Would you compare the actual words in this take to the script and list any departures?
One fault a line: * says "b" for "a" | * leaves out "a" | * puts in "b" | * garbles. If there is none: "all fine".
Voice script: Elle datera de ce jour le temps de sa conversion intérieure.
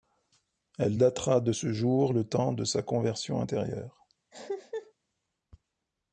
all fine